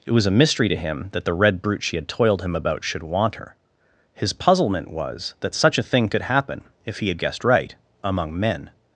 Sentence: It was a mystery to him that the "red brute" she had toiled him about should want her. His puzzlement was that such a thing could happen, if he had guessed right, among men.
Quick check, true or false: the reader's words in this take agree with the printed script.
true